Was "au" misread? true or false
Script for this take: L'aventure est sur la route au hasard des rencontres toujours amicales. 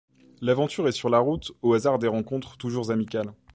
false